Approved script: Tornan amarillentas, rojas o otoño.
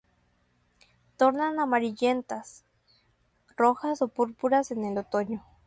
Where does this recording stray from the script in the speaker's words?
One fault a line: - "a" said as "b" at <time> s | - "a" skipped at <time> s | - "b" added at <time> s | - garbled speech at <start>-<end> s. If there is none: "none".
- "púrpuras en el" added at 4.1 s